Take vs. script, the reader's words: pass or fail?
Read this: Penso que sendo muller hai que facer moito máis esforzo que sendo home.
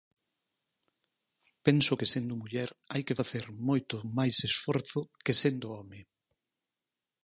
pass